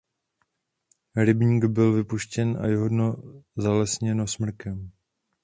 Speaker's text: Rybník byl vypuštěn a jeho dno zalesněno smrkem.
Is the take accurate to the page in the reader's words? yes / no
yes